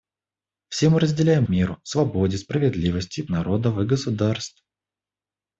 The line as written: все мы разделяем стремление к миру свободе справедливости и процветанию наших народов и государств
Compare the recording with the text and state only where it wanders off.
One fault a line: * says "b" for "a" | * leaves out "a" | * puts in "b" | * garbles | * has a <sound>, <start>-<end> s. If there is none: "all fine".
* leaves out "стремление к"
* leaves out "процветанию наших"